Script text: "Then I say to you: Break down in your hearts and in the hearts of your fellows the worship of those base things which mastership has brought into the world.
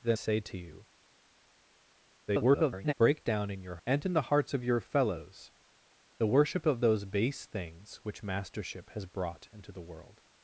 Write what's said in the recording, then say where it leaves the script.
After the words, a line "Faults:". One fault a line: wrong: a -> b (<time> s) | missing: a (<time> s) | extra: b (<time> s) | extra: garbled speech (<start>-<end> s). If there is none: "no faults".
"Then say to you: [garbled] Break down in your and in the hearts of your fellows the worship of those base things which mastership has brought into the world.
Faults:
missing: I (0.2 s)
extra: garbled speech (2.3-2.9 s)
missing: hearts (3.8 s)